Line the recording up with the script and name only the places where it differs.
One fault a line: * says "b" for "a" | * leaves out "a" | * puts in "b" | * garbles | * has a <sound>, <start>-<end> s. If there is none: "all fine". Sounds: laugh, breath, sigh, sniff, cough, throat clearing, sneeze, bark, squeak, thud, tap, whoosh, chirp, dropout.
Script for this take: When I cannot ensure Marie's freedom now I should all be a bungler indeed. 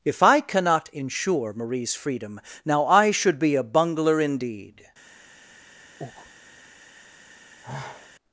* says "If" for "When"
* leaves out "all"
* has a breath, 6.0-6.3 s
* has a sigh, 7.6-8.1 s